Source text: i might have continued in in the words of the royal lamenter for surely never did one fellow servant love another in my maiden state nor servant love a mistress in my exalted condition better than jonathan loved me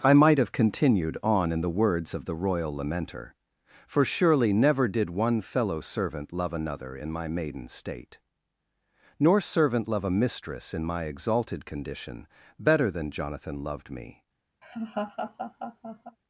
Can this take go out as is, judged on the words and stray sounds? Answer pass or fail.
fail